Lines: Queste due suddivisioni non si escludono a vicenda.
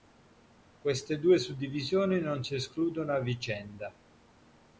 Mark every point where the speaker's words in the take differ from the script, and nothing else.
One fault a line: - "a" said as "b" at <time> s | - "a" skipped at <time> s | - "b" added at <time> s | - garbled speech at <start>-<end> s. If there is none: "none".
none